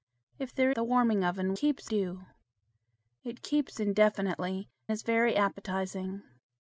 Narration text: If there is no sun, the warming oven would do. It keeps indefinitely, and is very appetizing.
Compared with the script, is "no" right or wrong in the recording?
wrong